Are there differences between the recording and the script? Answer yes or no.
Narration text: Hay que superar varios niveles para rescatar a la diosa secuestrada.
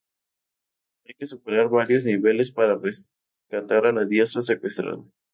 no